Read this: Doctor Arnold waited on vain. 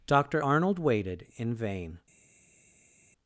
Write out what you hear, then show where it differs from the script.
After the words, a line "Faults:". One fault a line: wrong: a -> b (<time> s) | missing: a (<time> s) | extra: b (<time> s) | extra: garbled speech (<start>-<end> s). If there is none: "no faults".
Doctor Arnold waited in vain.
Faults:
wrong: on -> in (1.4 s)